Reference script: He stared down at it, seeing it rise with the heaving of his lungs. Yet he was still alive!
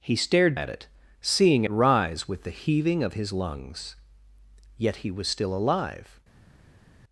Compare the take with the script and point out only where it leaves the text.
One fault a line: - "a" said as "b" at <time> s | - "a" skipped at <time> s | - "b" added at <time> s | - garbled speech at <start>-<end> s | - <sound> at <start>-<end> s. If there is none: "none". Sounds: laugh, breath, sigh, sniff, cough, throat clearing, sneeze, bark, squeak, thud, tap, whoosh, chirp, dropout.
- "down" skipped at 0.6 s
- "it" skipped at 1.6 s